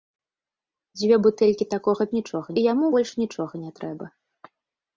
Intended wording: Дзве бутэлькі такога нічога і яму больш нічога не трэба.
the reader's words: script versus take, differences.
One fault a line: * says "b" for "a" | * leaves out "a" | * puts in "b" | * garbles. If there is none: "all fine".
all fine